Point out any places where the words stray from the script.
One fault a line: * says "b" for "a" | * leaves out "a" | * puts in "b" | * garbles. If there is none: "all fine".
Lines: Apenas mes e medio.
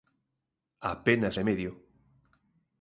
* leaves out "mes"